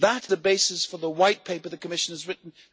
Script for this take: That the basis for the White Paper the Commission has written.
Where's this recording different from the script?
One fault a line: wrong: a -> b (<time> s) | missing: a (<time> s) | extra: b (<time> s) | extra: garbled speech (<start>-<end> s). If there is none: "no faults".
no faults